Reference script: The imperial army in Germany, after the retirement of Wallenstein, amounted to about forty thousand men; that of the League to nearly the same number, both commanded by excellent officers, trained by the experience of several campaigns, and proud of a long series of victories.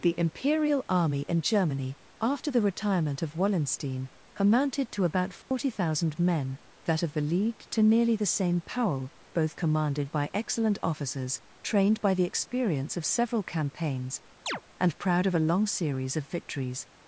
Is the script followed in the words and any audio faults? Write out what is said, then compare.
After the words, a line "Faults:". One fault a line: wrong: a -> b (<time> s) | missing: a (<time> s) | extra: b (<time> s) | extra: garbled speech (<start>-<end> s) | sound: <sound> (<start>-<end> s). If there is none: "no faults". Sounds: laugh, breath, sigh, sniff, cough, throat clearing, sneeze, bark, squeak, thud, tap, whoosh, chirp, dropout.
The imperial army in Germany, after the retirement of Wallenstein, amounted to about forty thousand men; that of the League to nearly the same powell, both commanded by excellent officers, trained by the experience of several campaigns, and proud of a long series of victories.
Faults:
sound: dropout (5.4-5.5 s)
wrong: number -> powell (8.6 s)
sound: chirp (14.5-14.6 s)